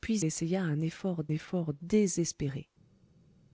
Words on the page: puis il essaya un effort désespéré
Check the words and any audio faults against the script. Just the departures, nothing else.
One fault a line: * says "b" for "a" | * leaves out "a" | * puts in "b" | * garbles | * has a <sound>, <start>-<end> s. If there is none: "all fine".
* leaves out "il"
* puts in "effort"